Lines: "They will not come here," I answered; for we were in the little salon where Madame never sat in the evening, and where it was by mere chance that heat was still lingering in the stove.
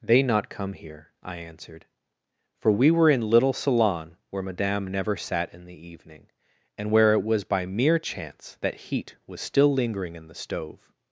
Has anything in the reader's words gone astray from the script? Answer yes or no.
yes